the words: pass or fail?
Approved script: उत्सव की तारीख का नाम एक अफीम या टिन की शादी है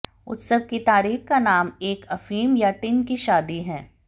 pass